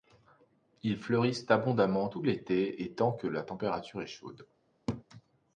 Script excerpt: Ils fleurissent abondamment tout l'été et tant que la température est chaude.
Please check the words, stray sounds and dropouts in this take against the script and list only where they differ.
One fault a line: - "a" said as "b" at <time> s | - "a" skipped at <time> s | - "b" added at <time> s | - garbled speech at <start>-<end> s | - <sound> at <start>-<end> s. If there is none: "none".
- laugh at 4.9-5.0 s